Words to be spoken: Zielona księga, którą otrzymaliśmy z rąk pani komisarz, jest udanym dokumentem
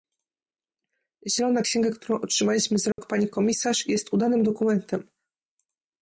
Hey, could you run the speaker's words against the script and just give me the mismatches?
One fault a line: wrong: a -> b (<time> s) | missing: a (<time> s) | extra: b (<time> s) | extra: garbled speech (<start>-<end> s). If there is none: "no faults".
no faults